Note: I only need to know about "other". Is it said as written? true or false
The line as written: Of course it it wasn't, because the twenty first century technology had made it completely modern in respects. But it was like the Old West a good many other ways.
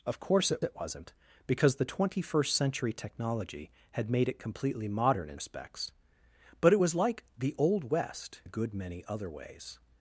true